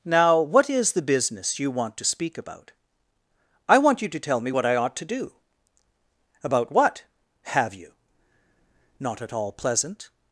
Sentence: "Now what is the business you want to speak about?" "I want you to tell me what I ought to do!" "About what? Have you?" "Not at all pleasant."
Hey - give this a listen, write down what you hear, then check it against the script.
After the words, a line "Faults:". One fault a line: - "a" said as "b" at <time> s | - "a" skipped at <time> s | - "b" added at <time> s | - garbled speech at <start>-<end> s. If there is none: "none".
"Now what is the business you want to speak about?" "I want you to tell me what I ought to do!" "About what? Have you?" "Not at all pleasant."
Faults:
none